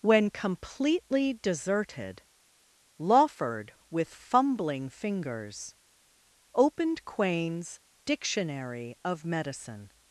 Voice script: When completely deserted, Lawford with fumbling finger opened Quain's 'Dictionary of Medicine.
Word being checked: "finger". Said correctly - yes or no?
no